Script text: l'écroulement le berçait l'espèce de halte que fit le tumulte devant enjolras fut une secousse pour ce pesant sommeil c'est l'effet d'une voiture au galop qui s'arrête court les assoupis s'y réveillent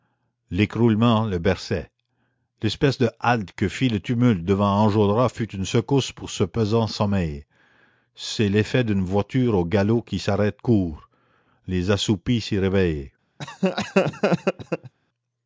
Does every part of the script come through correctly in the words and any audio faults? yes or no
no